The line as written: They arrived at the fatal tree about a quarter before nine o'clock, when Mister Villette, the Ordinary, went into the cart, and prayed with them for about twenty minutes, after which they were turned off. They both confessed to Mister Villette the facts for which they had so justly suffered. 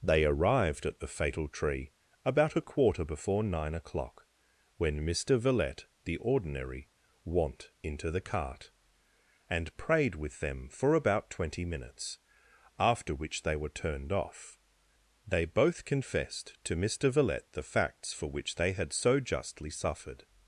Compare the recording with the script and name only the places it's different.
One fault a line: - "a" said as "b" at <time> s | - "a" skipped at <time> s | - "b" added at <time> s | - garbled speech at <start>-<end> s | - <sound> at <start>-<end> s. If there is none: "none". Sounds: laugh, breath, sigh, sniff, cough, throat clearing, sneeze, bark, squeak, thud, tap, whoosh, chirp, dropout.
- "went" said as "want" at 7.2 s